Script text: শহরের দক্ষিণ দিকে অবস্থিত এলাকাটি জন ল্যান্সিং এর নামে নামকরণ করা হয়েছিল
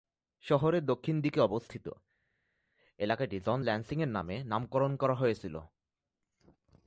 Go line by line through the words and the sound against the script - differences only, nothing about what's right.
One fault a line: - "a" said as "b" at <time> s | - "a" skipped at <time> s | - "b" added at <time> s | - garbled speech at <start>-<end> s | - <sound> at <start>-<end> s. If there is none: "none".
none